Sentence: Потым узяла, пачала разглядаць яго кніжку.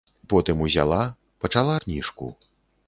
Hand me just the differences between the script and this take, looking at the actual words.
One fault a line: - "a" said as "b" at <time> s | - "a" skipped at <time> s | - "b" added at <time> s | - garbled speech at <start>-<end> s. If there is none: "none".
- "разглядаць яго" skipped at 1.8 s